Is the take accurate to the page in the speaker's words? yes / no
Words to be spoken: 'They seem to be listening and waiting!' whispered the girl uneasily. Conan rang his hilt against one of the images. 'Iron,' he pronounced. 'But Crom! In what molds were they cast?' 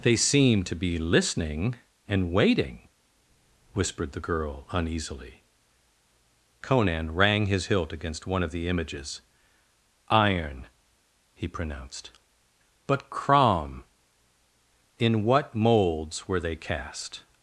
yes